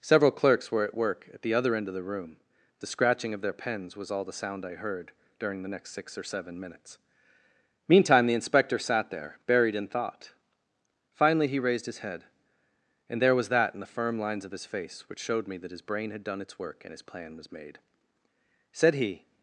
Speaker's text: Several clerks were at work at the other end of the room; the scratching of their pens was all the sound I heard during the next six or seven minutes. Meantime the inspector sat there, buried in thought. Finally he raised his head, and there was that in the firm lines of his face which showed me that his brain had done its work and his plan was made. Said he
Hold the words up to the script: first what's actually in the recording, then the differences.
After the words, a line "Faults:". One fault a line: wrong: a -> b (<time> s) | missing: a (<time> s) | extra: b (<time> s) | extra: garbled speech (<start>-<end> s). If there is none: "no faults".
Several clerks were at work at the other end of the room; the scratching of their pens was all the sound I heard during the next six or seven minutes. Meantime the inspector sat there, buried in thought. Finally he raised his head, and there was that in the firm lines of his face which showed me that his brain had done its work and his plan was made. Said he
Faults:
no faults